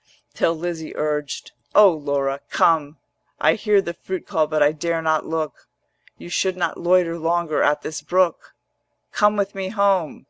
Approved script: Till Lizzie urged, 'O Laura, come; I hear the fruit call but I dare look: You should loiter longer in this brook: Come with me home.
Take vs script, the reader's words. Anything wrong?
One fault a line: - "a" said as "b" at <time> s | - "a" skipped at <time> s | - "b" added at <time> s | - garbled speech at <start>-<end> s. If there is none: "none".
- "not" added at 5.0 s
- "not" added at 6.6 s
- "in" said as "at" at 7.6 s